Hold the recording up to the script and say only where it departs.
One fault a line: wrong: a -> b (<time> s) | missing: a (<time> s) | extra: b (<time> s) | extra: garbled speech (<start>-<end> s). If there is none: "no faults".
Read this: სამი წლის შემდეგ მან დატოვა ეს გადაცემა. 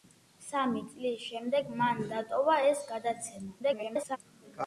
extra: garbled speech (3.6-4.2 s)